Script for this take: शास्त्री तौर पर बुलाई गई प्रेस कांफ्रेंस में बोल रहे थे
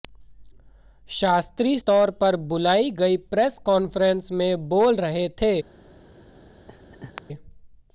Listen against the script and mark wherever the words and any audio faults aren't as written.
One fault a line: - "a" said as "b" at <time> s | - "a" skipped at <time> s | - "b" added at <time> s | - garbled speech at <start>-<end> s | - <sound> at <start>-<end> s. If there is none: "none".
- laugh at 6.7-7.2 s